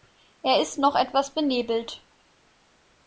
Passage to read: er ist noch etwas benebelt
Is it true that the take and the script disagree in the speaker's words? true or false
false